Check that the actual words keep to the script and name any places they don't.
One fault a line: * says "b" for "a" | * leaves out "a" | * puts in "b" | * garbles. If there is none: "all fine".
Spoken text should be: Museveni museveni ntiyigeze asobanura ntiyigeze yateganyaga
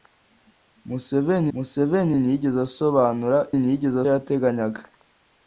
all fine